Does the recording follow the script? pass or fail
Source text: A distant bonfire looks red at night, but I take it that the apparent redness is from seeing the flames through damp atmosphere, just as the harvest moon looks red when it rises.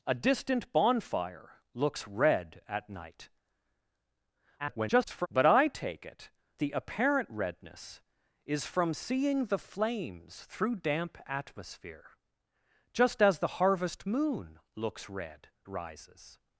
fail